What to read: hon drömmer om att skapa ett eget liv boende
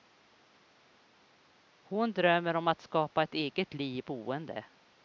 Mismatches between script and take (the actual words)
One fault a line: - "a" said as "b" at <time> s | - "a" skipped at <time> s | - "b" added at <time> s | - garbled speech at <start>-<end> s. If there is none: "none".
none